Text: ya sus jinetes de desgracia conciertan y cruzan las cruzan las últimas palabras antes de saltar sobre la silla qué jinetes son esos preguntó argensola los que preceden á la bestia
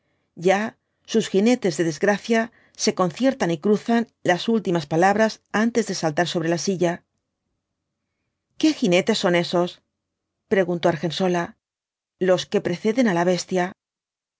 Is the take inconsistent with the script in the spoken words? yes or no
yes